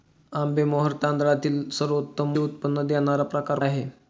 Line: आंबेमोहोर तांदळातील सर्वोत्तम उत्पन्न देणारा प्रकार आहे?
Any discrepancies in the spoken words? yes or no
no